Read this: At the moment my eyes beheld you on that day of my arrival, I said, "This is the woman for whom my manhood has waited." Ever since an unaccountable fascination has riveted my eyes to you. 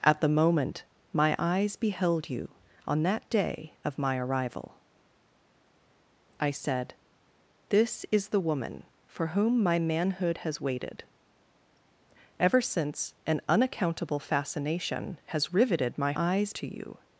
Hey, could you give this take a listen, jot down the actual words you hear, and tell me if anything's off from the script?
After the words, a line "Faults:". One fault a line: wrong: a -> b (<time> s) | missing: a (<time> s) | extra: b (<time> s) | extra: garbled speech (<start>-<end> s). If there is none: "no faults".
At the moment my eyes beheld you on that day of my arrival, I said, "This is the woman for whom my manhood has waited." Ever since an unaccountable fascination has riveted my eyes to you.
Faults:
no faults